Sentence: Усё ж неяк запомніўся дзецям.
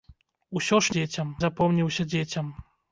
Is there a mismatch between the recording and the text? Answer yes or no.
yes